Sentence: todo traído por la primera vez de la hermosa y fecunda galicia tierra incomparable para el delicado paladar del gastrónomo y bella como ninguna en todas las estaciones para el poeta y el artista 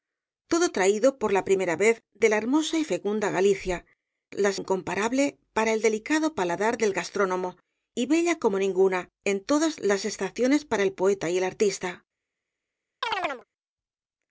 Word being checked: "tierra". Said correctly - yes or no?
no